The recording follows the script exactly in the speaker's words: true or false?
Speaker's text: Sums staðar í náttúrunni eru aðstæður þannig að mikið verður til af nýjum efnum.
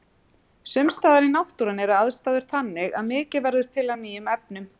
true